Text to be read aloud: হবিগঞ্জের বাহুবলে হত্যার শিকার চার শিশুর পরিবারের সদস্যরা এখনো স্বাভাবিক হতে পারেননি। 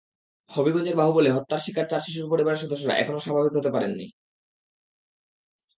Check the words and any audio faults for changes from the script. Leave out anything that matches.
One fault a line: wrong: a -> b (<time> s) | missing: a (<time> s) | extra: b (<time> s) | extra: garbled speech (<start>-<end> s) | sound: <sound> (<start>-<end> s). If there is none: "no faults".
no faults